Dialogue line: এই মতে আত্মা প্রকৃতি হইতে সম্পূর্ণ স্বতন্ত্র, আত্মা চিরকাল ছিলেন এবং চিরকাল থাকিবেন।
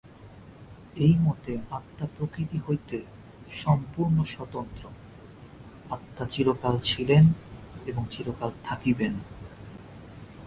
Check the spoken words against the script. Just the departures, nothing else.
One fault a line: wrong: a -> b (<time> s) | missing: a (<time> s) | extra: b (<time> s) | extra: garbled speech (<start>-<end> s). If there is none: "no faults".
no faults